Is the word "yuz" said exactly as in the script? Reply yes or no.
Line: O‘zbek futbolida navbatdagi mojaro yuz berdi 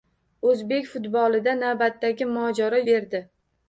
no